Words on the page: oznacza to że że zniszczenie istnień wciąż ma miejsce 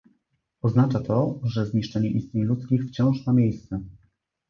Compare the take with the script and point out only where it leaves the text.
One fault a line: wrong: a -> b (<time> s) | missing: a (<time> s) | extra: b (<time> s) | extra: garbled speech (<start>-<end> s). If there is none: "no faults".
missing: że (1.6 s)
extra: ludzkich (2.4 s)